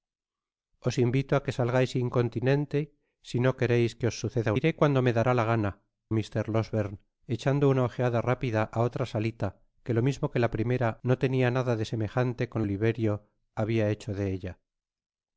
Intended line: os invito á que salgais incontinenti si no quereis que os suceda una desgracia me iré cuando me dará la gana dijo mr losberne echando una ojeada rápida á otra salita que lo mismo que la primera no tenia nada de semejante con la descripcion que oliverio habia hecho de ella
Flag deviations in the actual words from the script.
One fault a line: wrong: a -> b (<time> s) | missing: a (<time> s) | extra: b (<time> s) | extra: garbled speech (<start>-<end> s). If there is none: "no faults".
missing: una desgracia me (4.5 s)
missing: dijo (5.7 s)
missing: la descripcion que (12.6 s)